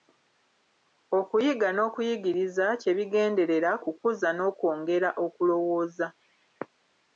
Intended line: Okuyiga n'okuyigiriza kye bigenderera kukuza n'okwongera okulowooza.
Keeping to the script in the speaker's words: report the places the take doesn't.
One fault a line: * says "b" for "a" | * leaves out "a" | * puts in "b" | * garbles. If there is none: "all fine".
all fine